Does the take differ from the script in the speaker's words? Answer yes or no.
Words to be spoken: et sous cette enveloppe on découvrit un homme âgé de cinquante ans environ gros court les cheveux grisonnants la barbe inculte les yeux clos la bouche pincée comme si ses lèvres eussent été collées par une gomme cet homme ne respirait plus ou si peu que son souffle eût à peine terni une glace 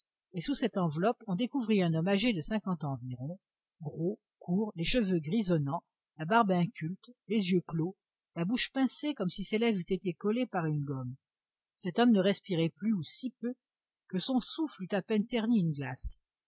no